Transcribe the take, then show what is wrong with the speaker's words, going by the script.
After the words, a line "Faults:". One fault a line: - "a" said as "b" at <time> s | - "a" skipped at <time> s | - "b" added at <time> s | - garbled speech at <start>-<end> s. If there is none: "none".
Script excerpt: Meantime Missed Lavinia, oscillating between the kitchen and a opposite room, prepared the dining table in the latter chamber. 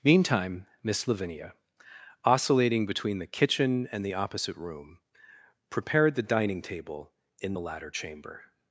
Meantime Miss Lavinia, oscillating between the kitchen and the opposite room, prepared the dining table in the latter chamber.
Faults:
- "Missed" said as "Miss" at 0.8 s
- "a" said as "the" at 4.0 s